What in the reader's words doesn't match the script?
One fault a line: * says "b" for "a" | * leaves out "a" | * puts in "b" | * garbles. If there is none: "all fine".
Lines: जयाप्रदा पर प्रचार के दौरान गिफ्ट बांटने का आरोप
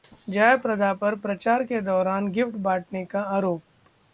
all fine